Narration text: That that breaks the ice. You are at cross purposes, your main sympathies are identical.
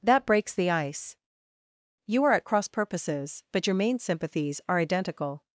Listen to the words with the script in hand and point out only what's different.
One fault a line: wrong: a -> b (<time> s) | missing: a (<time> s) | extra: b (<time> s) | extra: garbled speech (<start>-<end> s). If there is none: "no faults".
missing: that (0.2 s)
extra: but (3.5 s)